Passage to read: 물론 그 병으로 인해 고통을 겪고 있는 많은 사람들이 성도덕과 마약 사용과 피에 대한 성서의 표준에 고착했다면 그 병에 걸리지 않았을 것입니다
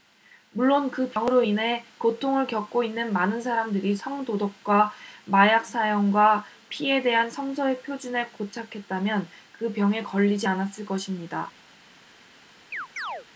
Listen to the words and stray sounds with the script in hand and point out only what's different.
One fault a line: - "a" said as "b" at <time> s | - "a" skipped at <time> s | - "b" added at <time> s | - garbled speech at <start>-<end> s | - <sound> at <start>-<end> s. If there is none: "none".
- chirp at 12.7-13.3 s